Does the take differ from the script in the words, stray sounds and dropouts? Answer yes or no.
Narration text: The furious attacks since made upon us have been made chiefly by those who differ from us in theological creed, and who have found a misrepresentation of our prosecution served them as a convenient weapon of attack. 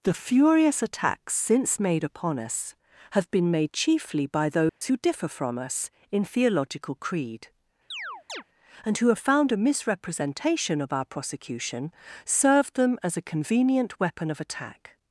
yes